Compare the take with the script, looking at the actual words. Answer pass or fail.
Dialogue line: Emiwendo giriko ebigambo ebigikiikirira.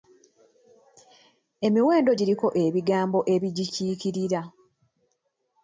pass